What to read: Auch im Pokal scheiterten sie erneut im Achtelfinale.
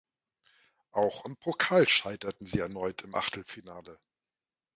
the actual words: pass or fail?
pass